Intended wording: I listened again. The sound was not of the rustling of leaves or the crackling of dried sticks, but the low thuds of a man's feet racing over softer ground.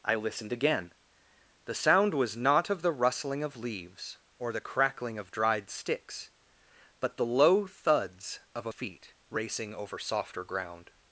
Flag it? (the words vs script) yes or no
yes